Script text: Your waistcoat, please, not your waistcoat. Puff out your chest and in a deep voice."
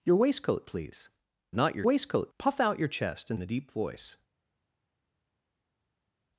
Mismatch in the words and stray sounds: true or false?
false